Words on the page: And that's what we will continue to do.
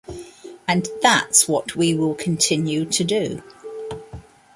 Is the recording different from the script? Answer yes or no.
no